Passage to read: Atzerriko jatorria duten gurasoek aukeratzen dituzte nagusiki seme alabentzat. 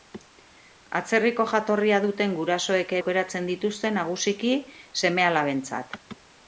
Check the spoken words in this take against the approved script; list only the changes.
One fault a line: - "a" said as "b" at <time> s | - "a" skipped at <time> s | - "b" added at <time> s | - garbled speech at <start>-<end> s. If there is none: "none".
none